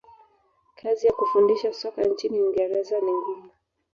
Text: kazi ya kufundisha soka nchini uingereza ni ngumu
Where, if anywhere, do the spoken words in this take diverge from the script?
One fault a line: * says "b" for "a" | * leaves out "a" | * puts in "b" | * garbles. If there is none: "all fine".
all fine